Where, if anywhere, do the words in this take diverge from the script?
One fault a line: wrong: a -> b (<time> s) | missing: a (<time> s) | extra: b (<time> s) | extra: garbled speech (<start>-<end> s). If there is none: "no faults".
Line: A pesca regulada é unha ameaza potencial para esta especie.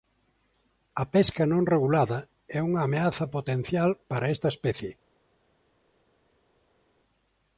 extra: non (1.5 s)